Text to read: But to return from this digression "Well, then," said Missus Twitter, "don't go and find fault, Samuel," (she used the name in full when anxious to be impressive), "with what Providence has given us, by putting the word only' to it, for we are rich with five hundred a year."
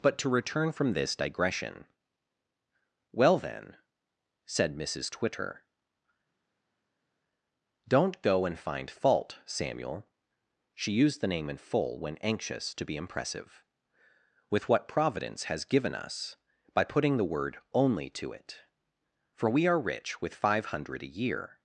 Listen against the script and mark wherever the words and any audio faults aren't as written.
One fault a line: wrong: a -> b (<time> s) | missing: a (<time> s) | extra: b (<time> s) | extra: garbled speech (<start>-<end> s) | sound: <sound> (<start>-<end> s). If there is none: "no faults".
no faults